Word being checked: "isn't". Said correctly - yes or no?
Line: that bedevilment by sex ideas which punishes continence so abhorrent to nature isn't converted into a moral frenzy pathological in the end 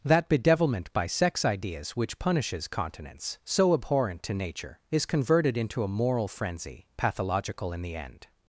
no